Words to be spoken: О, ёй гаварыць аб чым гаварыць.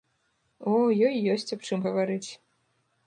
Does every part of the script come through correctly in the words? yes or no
no